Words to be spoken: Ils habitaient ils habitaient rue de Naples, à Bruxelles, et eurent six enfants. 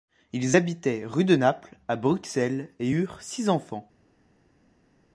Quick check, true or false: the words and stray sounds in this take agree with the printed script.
false